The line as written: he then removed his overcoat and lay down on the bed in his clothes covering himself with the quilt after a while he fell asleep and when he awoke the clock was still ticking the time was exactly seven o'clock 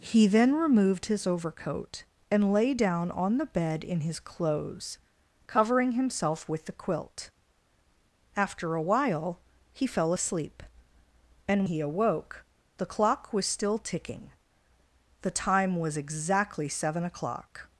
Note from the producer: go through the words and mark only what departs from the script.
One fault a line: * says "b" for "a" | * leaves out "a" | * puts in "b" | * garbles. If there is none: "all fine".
* leaves out "when"